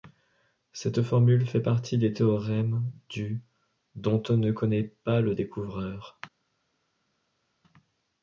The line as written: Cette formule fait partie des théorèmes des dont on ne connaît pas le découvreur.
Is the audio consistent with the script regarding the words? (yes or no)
no